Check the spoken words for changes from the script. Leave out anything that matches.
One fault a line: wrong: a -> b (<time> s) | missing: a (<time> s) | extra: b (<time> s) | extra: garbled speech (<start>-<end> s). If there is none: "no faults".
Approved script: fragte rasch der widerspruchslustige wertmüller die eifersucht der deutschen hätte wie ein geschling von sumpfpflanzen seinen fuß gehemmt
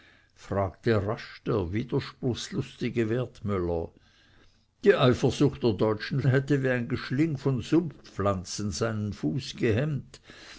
no faults